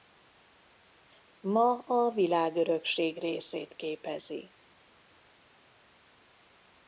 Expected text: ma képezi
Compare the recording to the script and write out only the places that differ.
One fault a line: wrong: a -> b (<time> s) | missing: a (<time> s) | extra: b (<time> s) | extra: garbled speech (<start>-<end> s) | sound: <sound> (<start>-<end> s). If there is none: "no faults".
extra: a világörökség részét (1.9 s)